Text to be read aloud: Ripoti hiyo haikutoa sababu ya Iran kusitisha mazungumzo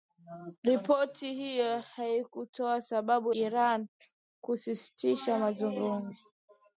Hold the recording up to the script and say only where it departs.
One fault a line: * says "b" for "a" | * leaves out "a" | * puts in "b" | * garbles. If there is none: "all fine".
* leaves out "ya"